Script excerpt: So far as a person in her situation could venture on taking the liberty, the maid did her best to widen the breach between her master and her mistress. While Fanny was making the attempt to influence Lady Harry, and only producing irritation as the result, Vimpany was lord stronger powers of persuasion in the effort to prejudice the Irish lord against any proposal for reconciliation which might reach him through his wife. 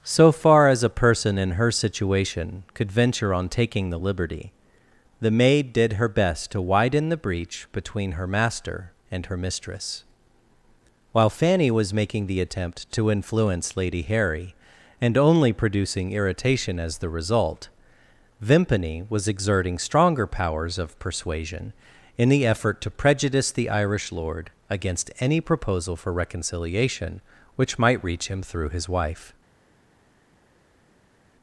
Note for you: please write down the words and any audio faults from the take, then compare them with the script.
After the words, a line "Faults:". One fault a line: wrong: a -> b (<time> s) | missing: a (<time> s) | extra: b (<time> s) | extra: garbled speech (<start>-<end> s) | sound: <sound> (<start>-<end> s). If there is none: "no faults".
So far as a person in her situation could venture on taking the liberty, the maid did her best to widen the breach between her master and her mistress. While Fanny was making the attempt to influence Lady Harry, and only producing irritation as the result, Vimpany was exerting stronger powers of persuasion in the effort to prejudice the Irish lord against any proposal for reconciliation which might reach him through his wife.
Faults:
wrong: lord -> exerting (19.3 s)